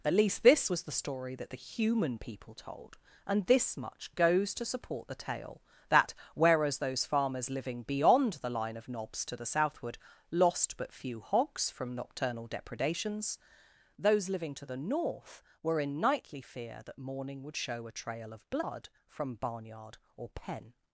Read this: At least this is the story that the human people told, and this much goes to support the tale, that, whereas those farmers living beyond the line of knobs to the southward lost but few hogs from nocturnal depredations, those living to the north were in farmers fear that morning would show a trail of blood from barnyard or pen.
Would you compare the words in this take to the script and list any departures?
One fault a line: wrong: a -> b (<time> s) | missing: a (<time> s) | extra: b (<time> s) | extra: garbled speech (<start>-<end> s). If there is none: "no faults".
wrong: is -> was (0.7 s)
wrong: farmers -> nightly (16.0 s)